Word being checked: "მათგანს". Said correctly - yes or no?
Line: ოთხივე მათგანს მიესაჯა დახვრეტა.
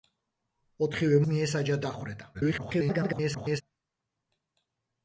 no